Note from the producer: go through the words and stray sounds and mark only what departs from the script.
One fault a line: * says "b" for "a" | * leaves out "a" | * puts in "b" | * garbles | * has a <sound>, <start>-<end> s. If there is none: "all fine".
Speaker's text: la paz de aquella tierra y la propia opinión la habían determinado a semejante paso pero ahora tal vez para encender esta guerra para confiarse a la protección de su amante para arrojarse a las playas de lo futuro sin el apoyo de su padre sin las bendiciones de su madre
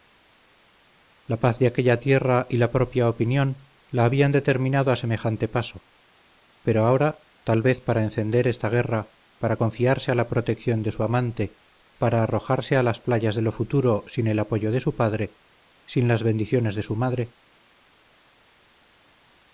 all fine